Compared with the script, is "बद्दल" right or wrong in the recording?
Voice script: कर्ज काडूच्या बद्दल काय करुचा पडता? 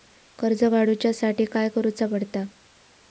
wrong